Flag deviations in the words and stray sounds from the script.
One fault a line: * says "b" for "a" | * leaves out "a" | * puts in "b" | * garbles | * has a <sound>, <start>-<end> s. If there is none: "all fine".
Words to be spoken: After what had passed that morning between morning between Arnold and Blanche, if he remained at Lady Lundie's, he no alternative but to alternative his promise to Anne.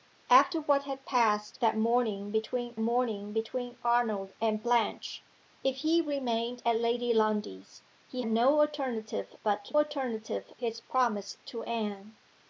all fine